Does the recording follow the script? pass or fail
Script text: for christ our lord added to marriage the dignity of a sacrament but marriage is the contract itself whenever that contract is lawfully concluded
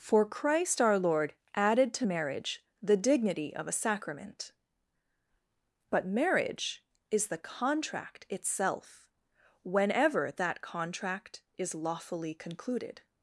pass